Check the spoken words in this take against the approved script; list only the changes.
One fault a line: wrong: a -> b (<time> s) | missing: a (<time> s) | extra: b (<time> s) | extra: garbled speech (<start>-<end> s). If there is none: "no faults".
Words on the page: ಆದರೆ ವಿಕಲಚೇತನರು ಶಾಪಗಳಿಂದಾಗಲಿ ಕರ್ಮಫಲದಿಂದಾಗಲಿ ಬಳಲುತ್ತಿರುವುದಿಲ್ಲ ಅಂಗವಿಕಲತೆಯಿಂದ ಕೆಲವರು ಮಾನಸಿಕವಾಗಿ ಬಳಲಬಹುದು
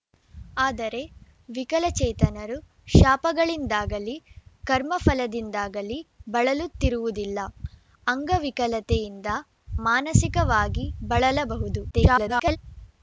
missing: ಕೆಲವರು (9.3 s)
extra: garbled speech (11.9-12.6 s)